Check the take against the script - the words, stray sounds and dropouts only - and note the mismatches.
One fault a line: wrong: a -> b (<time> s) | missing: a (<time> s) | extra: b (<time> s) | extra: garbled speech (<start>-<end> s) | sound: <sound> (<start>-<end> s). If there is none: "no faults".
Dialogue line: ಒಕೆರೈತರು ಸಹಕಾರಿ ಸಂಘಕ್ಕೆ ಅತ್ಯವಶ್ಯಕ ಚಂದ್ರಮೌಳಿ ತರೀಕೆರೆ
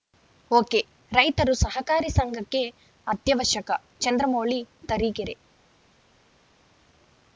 no faults